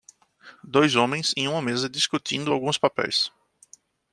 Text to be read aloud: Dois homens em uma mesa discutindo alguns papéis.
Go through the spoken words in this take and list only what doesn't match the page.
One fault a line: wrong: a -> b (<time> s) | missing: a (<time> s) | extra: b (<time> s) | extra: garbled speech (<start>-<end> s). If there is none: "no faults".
no faults